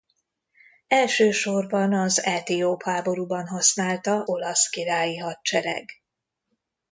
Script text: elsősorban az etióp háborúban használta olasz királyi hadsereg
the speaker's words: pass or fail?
pass